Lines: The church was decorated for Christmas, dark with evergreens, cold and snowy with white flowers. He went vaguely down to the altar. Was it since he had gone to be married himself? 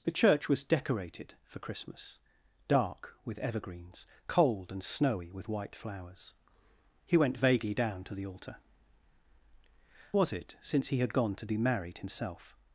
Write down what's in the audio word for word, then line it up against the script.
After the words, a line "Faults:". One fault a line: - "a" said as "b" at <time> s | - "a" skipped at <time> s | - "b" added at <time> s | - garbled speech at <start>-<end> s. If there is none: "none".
The church was decorated for Christmas, dark with evergreens, cold and snowy with white flowers. He went vaguely down to the altar. Was it since he had gone to be married himself?
Faults:
none